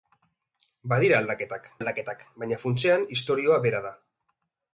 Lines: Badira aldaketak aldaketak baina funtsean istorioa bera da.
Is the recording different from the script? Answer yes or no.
no